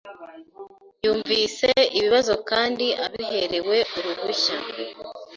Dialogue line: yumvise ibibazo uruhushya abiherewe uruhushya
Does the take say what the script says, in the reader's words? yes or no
no